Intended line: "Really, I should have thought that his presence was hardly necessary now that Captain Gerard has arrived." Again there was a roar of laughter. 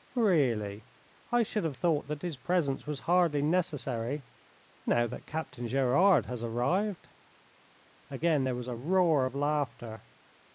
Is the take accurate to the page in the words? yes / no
yes